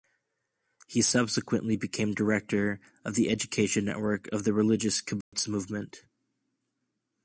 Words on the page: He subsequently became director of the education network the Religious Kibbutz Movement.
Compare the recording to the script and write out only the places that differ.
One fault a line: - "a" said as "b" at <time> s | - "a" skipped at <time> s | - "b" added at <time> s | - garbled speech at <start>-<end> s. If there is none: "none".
- "of" added at 4.3 s